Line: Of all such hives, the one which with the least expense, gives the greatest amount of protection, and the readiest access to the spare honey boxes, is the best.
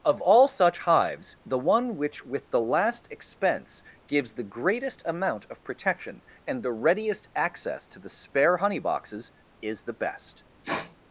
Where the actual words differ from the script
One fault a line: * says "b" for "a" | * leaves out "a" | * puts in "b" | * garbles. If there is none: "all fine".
* says "last" for "least"